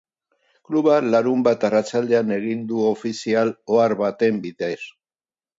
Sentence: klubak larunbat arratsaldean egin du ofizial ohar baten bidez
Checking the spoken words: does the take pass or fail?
pass